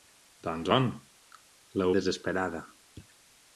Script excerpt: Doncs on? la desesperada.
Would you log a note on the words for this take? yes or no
no